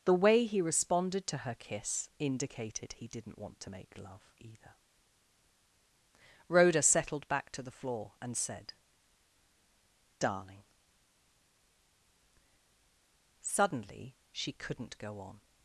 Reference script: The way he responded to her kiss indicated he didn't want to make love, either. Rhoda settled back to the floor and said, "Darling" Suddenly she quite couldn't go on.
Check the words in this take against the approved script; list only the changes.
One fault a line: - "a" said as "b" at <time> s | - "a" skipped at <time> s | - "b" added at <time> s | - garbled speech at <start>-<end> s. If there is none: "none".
- "quite" skipped at 14.5 s